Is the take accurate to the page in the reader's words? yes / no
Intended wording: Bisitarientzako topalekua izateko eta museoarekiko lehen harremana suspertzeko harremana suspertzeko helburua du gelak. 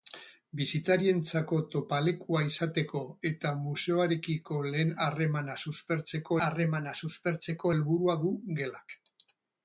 yes